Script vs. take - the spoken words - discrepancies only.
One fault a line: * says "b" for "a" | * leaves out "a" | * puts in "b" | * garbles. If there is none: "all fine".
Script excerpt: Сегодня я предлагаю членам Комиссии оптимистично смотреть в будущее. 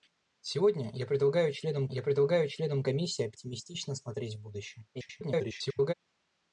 * puts in "я предлагаю членам"
* garbles